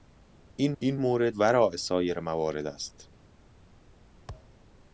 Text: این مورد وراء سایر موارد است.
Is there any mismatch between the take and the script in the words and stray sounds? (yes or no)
yes